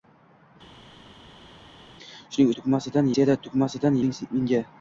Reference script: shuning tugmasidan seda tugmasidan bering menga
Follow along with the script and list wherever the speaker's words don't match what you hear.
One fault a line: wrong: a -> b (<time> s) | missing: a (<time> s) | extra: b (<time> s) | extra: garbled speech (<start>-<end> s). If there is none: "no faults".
no faults